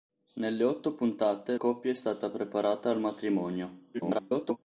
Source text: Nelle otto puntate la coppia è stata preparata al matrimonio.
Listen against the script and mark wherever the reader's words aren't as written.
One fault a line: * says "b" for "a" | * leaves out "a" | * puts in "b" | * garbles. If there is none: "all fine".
* leaves out "la"
* garbles